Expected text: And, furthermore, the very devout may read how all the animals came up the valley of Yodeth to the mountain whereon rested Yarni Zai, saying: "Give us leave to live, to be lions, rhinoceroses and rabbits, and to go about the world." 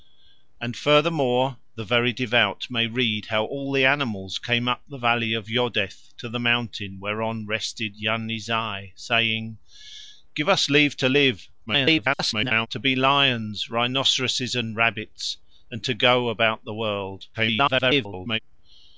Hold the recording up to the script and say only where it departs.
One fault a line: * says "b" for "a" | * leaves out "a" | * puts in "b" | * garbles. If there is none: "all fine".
* garbles
* garbles